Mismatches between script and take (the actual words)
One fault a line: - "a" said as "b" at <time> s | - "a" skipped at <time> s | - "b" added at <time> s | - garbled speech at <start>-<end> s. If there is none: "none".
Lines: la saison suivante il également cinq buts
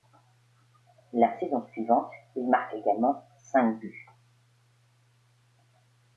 - "marque" added at 2.5 s